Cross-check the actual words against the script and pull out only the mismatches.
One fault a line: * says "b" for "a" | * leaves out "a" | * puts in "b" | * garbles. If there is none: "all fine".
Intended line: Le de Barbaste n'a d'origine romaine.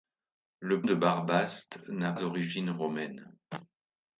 all fine